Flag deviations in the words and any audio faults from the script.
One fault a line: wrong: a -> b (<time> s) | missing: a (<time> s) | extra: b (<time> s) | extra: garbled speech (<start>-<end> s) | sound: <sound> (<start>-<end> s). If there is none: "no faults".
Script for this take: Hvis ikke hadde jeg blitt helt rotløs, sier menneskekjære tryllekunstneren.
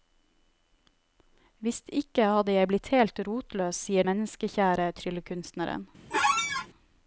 sound: squeak (6.1-6.7 s)